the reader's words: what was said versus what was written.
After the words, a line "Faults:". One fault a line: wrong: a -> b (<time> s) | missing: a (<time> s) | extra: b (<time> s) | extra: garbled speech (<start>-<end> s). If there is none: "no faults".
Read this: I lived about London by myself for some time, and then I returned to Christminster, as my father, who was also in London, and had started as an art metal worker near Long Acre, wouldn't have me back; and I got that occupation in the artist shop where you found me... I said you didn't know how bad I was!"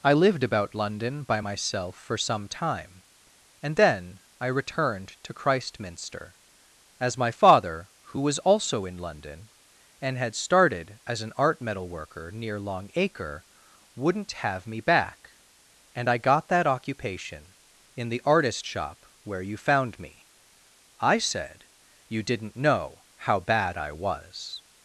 I lived about London by myself for some time, and then I returned to Christminster, as my father, who was also in London, and had started as an art metal worker near Long Acre, wouldn't have me back; and I got that occupation in the artist shop where you found me... I said you didn't know how bad I was!"
Faults:
no faults